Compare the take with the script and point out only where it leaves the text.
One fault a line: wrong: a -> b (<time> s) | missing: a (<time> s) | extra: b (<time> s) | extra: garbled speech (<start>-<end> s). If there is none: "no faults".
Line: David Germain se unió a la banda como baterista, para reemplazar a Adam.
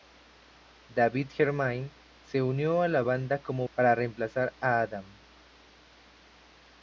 missing: baterista (3.7 s)